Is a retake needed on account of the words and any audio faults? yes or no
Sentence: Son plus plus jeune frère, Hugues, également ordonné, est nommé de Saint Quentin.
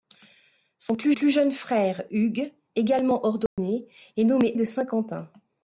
yes